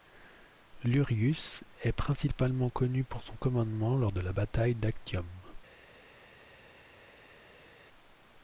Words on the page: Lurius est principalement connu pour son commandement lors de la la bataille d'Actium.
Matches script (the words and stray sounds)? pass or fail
fail